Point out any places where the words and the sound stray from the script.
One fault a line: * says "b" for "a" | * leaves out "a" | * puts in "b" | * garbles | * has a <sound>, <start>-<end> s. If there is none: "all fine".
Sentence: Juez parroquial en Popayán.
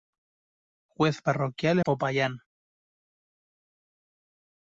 * leaves out "en"